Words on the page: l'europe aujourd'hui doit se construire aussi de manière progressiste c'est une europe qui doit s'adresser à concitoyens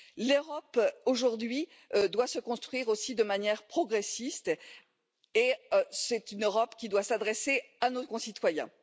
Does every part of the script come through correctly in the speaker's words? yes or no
no